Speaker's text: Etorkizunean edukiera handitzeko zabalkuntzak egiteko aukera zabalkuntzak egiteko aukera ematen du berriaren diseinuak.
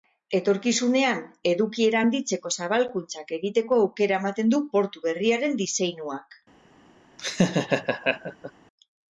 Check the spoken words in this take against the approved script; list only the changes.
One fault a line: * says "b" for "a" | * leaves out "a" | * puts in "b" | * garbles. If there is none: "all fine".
* leaves out "zabalkuntzak egiteko aukera"
* puts in "portu"